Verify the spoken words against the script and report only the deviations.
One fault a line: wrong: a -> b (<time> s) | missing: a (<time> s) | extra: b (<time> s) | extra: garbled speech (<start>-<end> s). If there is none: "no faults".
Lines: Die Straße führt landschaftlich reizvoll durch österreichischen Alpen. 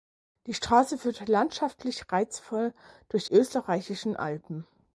no faults